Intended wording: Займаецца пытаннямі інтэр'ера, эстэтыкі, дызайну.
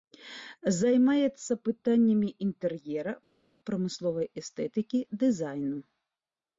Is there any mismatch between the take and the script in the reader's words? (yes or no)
yes